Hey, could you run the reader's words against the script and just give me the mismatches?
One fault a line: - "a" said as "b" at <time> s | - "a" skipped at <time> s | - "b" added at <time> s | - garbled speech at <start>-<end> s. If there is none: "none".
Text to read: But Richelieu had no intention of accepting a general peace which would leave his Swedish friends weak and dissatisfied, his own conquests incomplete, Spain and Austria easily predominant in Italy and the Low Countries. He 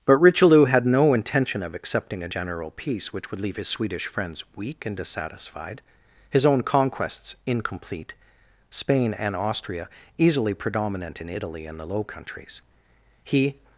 none